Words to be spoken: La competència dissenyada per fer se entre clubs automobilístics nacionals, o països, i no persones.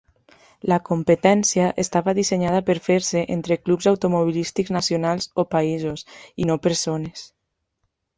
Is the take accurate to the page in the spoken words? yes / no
no